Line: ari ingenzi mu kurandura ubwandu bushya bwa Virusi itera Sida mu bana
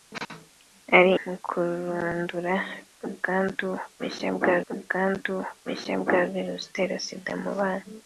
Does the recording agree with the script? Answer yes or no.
no